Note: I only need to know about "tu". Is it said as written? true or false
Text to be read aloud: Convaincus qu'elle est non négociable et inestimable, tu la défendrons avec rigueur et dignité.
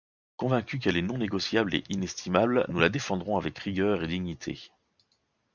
false